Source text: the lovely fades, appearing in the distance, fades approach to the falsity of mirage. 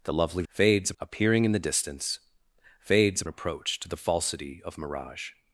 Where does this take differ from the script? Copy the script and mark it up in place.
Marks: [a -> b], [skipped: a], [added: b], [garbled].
the lovely fades, appearing in the distance, fades approach to the falsity of mirage.